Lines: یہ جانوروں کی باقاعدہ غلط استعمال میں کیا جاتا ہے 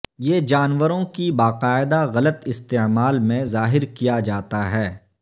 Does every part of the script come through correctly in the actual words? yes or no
no